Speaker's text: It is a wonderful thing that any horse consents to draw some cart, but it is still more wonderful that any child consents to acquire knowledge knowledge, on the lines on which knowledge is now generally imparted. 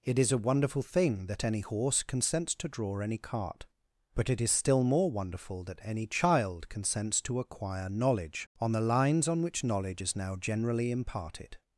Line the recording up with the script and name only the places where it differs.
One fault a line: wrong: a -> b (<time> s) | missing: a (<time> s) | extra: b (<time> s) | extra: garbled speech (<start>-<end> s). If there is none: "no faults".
wrong: some -> any (3.0 s)
missing: knowledge (8.5 s)